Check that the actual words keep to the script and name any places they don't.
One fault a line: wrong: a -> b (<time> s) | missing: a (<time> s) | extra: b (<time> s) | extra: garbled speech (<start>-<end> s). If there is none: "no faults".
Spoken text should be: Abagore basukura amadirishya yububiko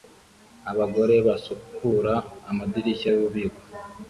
no faults